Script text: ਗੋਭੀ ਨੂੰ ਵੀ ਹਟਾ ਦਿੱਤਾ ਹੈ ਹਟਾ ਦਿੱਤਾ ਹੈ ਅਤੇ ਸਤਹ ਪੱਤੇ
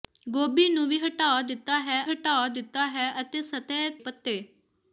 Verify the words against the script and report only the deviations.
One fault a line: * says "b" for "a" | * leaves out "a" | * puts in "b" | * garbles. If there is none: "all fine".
all fine